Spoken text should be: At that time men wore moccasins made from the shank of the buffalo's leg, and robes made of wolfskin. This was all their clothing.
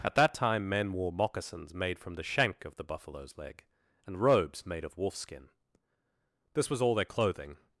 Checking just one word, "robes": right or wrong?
right